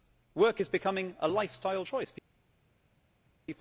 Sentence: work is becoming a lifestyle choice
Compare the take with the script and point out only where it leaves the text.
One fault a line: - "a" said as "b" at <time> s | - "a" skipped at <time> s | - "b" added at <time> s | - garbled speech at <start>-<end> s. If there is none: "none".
none